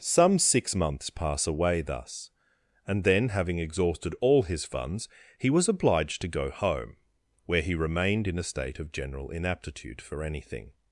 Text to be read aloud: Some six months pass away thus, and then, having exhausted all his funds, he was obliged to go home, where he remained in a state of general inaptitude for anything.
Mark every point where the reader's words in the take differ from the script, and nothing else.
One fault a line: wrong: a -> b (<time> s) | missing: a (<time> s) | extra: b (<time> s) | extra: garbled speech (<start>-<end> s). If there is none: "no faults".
no faults